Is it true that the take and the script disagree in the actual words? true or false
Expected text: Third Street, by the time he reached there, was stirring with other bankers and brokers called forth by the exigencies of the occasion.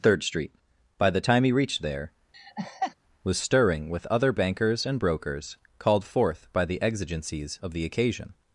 false